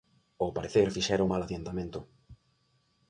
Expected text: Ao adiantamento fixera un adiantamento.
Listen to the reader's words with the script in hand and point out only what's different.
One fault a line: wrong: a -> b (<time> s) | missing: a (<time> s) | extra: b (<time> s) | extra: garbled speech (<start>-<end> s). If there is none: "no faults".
wrong: adiantamento -> parecer (0.6 s)
extra: mal (1.3 s)